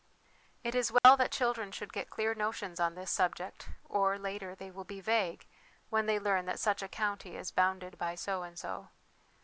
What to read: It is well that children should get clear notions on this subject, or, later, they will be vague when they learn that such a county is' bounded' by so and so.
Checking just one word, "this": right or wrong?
right